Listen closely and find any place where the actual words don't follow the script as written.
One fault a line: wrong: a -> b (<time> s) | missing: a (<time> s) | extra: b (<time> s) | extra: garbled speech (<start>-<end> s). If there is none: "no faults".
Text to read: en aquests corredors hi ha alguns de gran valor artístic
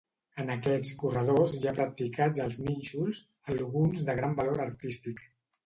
extra: practicats els nínxols (1.8 s)